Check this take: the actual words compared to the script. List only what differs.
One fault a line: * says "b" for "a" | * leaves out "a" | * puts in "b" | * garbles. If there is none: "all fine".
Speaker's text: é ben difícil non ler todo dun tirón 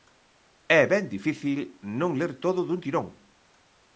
all fine